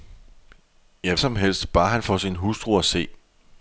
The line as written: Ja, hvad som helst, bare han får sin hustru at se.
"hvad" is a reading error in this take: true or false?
true